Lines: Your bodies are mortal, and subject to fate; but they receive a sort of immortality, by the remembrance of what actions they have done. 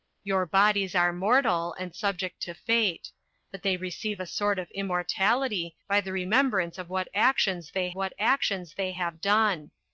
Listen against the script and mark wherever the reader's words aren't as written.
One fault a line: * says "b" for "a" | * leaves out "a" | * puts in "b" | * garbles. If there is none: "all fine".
* puts in "what actions they"